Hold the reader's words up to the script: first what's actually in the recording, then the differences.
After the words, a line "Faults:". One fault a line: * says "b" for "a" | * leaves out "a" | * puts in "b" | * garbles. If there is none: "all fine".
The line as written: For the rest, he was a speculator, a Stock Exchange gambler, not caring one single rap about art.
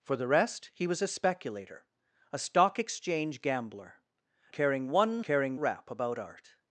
For the rest, he was a speculator, a Stock Exchange gambler, caring one caring rap about art.
Faults:
* leaves out "not"
* says "caring" for "single"